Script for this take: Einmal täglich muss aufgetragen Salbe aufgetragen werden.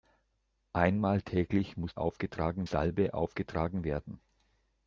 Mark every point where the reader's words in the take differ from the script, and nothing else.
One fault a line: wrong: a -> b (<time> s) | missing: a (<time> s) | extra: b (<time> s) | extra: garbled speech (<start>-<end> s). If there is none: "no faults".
no faults